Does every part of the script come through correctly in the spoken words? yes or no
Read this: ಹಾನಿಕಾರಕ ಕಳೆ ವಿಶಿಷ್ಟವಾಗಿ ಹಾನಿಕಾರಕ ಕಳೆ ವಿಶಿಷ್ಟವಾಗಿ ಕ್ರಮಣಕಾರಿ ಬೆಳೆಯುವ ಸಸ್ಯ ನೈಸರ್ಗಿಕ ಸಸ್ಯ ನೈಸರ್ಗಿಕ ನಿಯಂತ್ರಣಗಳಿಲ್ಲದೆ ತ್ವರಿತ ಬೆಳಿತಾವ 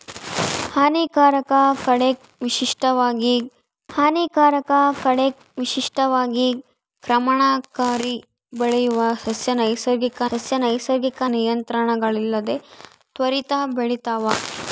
yes